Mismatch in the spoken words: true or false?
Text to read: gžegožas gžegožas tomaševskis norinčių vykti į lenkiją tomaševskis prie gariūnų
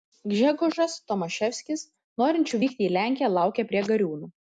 true